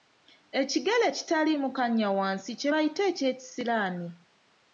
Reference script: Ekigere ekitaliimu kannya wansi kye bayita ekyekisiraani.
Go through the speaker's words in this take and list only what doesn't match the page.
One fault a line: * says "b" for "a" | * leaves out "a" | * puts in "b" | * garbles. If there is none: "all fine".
all fine